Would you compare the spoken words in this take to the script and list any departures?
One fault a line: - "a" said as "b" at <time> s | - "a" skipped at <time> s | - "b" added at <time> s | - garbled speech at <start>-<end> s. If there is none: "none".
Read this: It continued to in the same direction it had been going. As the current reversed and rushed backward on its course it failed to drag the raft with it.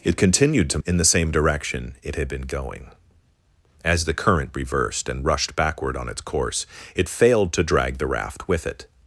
none